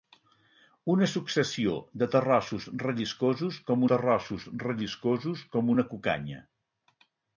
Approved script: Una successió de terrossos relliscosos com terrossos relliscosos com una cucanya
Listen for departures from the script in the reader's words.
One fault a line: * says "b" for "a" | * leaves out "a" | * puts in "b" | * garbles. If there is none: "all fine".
all fine